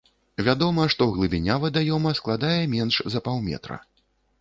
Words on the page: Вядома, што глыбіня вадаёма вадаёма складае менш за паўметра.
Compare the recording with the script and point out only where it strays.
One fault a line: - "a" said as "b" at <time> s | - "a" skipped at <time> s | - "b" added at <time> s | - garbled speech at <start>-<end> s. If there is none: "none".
- "вадаёма" skipped at 2.2 s